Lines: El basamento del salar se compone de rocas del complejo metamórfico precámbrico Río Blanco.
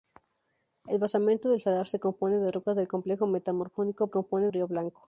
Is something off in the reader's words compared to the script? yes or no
yes